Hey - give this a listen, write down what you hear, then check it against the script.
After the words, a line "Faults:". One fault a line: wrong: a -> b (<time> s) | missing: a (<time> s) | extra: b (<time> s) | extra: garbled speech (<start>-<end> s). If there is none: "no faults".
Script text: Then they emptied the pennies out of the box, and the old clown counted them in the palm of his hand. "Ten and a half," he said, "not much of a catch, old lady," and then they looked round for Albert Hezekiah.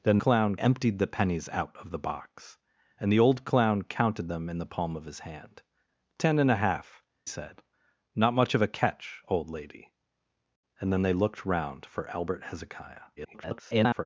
Then clown emptied the pennies out of the box, and the old clown counted them in the palm of his hand. "Ten and a half," said, "not much of a catch, old lady," and then they looked round for Albert Hezekiah. [garbled]
Faults:
wrong: they -> clown (0.2 s)
missing: he (7.0 s)
extra: garbled speech (13.2-14.1 s)